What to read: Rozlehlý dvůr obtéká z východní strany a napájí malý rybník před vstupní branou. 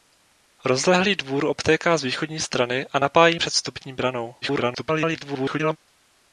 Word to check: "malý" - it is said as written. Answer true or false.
false